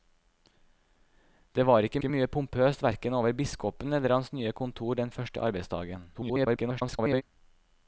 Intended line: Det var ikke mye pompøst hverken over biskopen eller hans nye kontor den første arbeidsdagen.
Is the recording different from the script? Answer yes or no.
yes